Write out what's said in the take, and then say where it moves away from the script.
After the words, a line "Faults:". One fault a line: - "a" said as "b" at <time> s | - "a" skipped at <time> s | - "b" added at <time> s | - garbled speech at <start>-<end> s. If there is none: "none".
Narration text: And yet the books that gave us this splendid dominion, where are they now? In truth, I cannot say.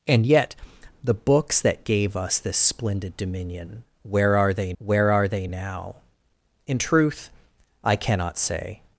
And yet the books that gave us this splendid dominion, where are they where are they now? In truth, I cannot say.
Faults:
- "where are they" added at 4.8 s